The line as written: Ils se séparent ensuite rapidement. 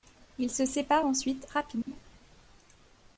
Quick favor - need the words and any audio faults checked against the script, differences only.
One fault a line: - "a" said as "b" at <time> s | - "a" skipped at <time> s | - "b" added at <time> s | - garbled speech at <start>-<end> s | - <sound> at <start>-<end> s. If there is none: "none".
- dropout at 1.8-1.9 s